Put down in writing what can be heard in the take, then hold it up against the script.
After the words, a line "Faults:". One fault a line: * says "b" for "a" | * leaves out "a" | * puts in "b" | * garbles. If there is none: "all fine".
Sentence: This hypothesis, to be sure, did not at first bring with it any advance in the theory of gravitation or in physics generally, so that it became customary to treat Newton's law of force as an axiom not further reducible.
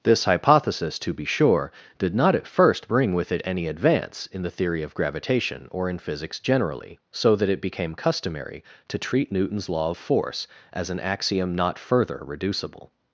This hypothesis, to be sure, did not at first bring with it any advance in the theory of gravitation or in physics generally, so that it became customary to treat Newton's law of force as an axiom not further reducible.
Faults:
all fine